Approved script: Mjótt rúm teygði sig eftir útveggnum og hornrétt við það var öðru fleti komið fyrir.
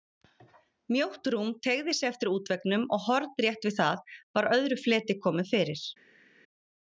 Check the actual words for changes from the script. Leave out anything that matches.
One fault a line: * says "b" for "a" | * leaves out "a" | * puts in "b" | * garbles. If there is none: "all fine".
all fine